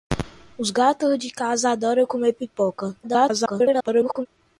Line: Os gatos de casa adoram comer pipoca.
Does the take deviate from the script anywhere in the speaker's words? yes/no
yes